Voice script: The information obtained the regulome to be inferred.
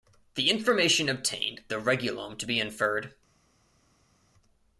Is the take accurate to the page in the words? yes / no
yes